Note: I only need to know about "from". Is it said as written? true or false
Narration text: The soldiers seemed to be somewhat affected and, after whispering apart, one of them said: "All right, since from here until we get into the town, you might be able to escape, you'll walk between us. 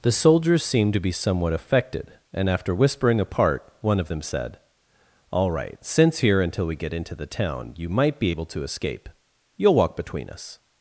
false